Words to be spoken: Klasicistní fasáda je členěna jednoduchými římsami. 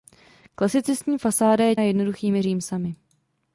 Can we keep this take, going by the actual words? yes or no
no